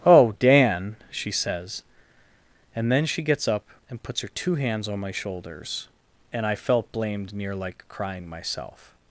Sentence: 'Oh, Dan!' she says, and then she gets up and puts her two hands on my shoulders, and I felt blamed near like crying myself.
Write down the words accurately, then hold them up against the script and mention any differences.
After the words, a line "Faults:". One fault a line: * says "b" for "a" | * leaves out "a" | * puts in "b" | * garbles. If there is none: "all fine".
'Oh, Dan!' she says, and then she gets up and puts her two hands on my shoulders, and I felt blamed near like crying myself.
Faults:
all fine